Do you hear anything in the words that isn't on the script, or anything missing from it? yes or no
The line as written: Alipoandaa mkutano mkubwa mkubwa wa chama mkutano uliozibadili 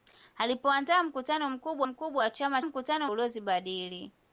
no